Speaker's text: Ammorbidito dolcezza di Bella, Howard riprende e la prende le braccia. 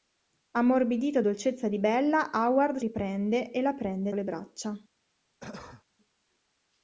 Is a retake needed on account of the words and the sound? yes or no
yes